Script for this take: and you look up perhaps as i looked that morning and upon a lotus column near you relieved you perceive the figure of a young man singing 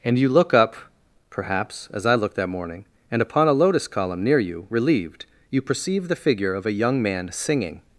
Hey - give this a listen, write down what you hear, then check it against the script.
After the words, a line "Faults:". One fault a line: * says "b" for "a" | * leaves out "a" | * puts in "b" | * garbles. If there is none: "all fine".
and you look up perhaps as i looked that morning and upon a lotus column near you relieved you perceive the figure of a young man singing
Faults:
all fine